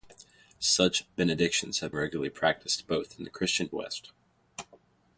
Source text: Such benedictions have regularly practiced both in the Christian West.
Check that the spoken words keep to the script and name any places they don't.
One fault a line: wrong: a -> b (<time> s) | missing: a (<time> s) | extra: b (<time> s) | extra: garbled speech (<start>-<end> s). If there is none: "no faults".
no faults